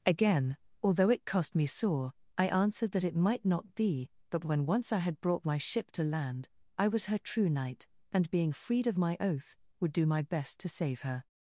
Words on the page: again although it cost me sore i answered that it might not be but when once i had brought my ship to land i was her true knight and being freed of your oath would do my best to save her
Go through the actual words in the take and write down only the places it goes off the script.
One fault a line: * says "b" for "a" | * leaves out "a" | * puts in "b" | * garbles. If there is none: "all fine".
* says "my" for "your"